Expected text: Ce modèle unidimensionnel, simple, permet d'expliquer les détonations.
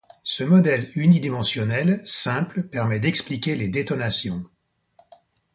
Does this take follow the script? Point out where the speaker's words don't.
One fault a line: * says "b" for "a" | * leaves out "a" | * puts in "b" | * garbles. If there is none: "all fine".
all fine